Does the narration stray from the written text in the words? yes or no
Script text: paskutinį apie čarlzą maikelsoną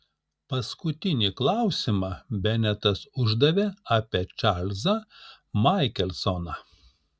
yes